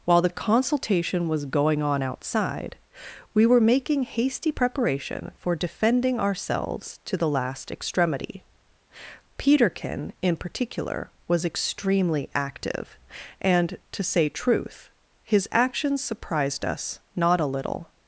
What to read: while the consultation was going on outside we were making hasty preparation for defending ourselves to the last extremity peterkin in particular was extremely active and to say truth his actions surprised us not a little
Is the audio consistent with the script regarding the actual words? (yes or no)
yes